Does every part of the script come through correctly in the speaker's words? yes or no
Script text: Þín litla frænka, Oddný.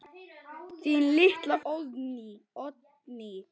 no